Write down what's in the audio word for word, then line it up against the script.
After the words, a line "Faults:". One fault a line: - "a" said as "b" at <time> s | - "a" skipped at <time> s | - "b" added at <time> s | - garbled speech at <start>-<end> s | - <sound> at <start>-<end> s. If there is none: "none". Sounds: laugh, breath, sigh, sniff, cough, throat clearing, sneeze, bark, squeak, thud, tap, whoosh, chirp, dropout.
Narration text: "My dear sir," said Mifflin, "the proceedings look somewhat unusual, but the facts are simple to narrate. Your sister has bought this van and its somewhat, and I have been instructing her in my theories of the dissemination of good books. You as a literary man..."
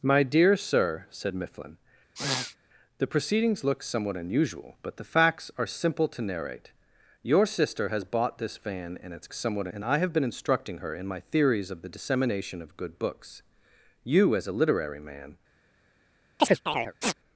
"My dear sir," said Mifflin, "the proceedings look somewhat unusual, but the facts are simple to narrate. Your sister has bought this van and its somewhat, and I have been instructing her in my theories of the dissemination of good books. You as a literary man..."
Faults:
- sniff at 2.1-2.6 s
- chirp at 16.4-17.1 s